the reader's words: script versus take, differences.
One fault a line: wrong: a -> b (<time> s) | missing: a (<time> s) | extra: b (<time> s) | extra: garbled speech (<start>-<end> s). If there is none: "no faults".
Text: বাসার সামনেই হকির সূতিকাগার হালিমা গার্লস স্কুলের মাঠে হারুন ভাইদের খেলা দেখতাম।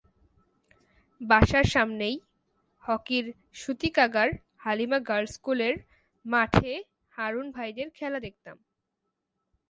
no faults